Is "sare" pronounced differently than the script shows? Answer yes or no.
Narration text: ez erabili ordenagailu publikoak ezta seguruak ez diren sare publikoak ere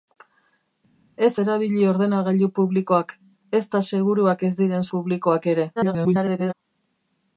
yes